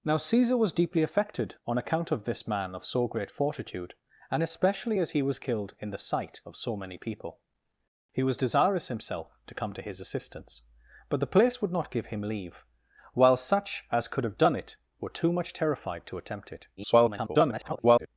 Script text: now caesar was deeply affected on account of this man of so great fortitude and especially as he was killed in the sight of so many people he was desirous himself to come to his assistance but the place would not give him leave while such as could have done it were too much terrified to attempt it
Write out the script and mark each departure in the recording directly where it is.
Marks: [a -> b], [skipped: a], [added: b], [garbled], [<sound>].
now caesar was deeply affected on account of this man of so great fortitude and especially as he was killed in the sight of so many people he was desirous himself to come to his assistance but the place would not give him leave while such as could have done it were too much terrified to attempt it [garbled]